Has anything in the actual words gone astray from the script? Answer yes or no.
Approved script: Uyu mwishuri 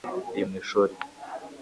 no